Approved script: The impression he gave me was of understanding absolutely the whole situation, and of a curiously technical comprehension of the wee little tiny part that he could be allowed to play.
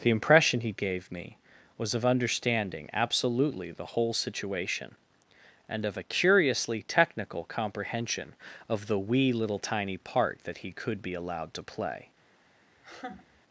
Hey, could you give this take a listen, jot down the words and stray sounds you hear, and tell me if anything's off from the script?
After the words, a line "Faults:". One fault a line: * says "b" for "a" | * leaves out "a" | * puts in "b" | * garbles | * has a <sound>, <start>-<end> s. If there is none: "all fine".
The impression he gave me was of understanding absolutely the whole situation, and of a curiously technical comprehension of the wee little tiny part that he could be allowed to play.
Faults:
* has a laugh, 12.8-13.4 s